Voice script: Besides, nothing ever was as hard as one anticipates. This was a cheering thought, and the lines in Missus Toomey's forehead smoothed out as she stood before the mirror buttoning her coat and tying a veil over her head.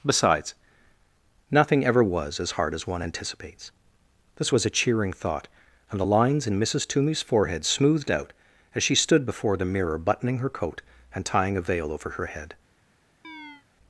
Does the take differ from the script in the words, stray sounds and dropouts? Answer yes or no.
yes